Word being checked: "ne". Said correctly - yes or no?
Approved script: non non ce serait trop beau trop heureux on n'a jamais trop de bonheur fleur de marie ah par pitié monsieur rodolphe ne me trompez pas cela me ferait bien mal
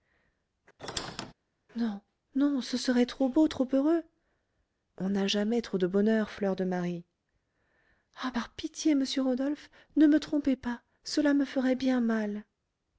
yes